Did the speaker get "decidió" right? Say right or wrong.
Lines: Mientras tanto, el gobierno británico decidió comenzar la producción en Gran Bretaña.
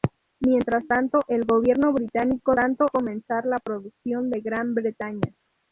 wrong